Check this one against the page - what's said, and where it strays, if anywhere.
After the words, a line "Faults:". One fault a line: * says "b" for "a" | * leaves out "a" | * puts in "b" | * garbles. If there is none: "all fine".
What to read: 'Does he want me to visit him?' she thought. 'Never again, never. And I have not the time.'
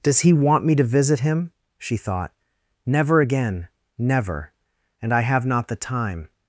'Does he want me to visit him?' she thought. 'Never again, never. And I have not the time.'
Faults:
all fine